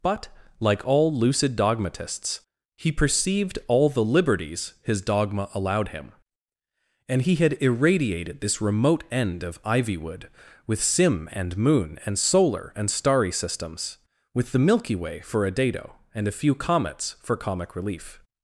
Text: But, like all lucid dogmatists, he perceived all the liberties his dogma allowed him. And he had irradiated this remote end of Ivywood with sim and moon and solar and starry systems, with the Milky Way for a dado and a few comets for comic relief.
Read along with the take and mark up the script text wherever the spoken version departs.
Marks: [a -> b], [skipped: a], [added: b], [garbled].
But, like all lucid dogmatists, he perceived all the liberties his dogma allowed him. And he had irradiated this remote end of Ivywood with sim and moon and solar and starry systems, with the Milky Way for a dado and a few comets for comic relief.